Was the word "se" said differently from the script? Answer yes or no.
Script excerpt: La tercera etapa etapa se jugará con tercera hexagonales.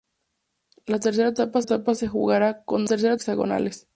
no